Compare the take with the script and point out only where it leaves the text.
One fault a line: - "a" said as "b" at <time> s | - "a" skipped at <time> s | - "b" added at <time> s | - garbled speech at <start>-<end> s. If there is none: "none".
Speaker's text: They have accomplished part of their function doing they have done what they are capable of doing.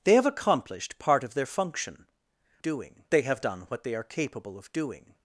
none